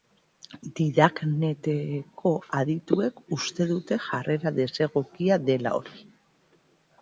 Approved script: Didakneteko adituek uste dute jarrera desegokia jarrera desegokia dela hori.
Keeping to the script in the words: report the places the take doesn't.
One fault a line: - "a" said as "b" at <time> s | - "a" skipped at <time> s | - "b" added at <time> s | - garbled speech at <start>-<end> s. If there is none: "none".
- "jarrera desegokia" skipped at 5.4 s